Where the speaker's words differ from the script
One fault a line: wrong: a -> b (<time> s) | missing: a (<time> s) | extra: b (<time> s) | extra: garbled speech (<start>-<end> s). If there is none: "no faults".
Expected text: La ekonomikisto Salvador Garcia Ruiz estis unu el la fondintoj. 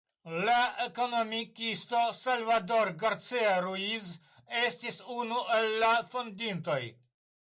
no faults